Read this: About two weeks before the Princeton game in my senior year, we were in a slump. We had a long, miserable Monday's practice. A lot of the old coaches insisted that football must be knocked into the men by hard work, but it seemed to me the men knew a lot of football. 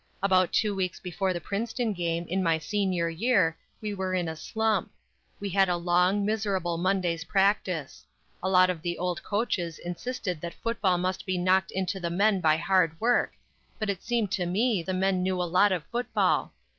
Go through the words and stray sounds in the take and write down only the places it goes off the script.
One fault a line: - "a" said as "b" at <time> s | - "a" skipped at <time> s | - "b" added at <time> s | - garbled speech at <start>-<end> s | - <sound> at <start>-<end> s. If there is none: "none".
none